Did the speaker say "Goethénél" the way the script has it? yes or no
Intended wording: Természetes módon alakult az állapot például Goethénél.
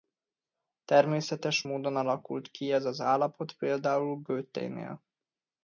yes